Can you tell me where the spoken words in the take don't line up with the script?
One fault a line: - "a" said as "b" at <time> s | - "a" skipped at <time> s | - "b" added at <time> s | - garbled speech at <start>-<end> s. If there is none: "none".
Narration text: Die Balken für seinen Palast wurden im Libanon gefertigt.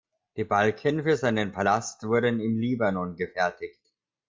none